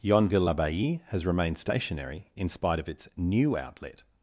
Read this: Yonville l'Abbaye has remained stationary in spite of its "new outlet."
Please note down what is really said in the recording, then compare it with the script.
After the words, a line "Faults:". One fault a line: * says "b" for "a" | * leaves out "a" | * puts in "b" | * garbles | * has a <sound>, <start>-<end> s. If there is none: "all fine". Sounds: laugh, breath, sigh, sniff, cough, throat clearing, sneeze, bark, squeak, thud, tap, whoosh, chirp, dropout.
Yonville l'Abbaye has remained stationary in spite of its "new outlet."
Faults:
all fine